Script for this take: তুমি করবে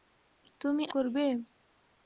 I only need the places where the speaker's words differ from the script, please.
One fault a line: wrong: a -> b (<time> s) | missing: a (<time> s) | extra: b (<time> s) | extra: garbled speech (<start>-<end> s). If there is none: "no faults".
no faults